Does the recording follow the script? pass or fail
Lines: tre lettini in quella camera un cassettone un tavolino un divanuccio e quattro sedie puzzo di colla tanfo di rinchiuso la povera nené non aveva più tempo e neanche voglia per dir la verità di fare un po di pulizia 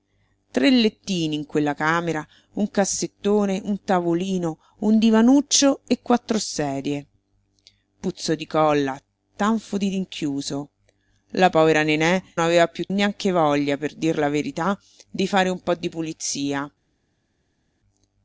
fail